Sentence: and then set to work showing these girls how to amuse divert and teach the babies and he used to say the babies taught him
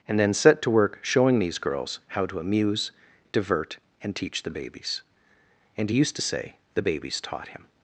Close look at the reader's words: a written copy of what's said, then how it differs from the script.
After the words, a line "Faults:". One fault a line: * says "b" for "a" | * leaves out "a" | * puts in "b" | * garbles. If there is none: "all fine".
and then set to work showing these girls how to amuse divert and teach the babies and he used to say the babies taught him
Faults:
all fine